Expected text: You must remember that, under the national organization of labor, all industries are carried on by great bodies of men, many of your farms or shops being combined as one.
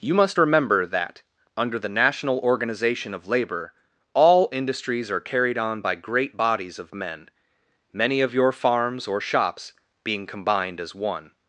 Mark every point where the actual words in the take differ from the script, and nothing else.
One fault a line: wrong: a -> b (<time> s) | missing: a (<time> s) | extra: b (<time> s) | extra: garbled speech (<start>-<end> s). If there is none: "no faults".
no faults